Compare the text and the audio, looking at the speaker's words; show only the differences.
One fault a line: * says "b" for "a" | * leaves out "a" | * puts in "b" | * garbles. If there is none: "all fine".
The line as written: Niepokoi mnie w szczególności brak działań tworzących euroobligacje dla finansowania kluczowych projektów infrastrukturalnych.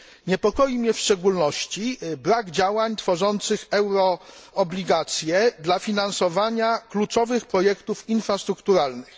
all fine